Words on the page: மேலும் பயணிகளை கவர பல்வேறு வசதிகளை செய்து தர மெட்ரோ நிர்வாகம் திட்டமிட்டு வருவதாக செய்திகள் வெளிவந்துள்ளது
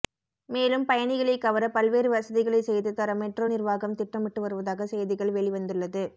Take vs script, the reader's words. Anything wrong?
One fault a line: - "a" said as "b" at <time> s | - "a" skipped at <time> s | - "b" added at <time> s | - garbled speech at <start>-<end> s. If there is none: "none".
none